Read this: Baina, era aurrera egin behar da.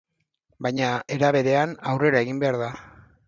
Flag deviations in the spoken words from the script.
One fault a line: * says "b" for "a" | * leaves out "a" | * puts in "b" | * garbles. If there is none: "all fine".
* puts in "berean"